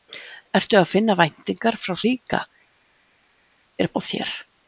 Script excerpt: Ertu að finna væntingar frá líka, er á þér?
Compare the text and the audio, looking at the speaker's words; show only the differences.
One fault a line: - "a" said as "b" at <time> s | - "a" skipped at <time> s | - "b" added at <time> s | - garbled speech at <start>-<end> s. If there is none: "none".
none